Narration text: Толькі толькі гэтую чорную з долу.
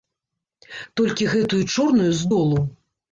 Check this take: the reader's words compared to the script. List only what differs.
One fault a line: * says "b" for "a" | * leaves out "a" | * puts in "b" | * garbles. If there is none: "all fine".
* leaves out "толькі"